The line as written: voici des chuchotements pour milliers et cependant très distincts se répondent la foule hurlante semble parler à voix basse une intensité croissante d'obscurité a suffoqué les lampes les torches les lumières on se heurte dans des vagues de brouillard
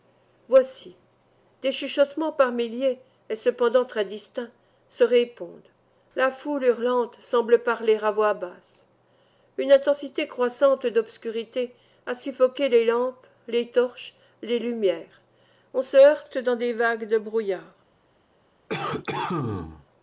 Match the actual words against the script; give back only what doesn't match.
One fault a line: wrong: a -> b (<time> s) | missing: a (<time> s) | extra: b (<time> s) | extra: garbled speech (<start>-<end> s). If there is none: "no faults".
wrong: pour -> par (2.3 s)